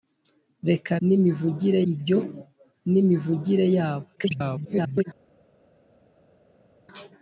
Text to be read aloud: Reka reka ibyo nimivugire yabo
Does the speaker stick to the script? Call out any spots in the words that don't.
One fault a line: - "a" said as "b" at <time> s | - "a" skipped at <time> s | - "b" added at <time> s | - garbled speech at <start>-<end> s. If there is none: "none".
- "reka" said as "nimivugire" at 1.1 s
- garbled speech at 4.2-5.0 s